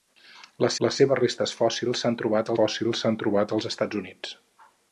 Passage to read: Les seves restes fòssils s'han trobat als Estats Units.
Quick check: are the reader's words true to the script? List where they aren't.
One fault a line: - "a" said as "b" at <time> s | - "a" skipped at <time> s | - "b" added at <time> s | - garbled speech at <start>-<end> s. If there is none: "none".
- "les" added at 0.9 s
- "fòssils s'han trobat" added at 2.6 s